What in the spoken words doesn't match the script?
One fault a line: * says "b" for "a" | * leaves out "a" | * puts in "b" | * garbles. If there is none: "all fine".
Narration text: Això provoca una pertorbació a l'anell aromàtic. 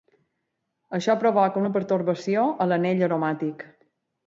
all fine